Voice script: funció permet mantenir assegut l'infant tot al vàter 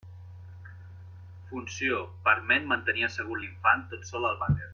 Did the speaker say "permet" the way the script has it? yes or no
yes